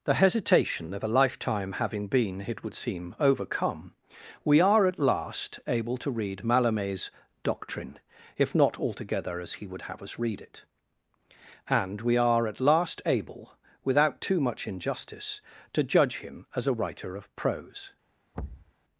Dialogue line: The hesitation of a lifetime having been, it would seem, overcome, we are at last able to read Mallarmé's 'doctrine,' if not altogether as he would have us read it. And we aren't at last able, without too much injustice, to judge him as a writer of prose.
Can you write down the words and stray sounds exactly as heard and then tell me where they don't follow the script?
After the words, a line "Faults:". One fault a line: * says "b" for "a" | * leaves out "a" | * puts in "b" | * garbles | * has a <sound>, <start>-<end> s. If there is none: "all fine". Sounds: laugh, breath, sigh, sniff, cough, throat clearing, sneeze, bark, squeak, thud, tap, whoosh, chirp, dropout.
The hesitation of a lifetime having been, it would seem, overcome, we are at last able to read Mallarmé's 'doctrine,' if not altogether as he would have us read it. And we are at last able, without too much injustice, to judge him as a writer of prose.
Faults:
* says "are" for "aren't"
* has a thud, 18.3-18.7 s